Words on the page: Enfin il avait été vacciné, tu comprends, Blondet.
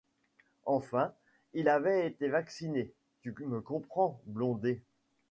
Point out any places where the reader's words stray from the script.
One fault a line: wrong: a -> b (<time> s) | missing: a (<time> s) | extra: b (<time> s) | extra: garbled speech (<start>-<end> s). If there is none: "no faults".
extra: me (3.4 s)